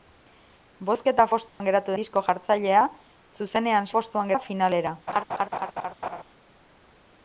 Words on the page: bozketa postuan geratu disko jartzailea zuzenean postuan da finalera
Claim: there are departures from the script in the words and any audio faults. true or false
true